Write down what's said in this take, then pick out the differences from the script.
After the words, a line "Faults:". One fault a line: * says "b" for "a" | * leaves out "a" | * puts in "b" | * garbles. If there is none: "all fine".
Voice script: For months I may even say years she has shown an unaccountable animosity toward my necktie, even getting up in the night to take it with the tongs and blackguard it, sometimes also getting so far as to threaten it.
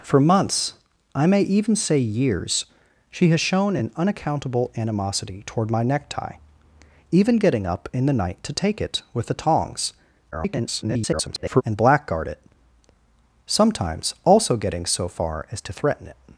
For months I may even say years she has shown an unaccountable animosity toward my necktie, even getting up in the night to take it with the tongs [garbled] and blackguard it, sometimes also getting so far as to threaten it.
Faults:
* garbles